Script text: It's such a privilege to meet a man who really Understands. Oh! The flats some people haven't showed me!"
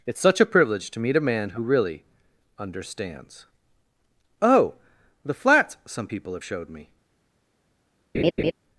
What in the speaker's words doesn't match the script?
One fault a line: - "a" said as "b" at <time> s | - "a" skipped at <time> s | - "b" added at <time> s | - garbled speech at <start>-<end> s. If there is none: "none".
- "haven't" said as "have" at 6.3 s